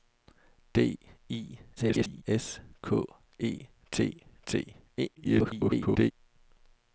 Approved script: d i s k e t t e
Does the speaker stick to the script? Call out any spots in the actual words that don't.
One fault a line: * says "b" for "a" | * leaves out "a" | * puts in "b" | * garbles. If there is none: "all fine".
* garbles
* garbles